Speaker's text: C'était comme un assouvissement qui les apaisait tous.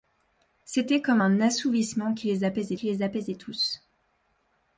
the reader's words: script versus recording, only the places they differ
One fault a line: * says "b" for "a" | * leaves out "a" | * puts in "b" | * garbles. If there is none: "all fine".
* puts in "qui les apaisait"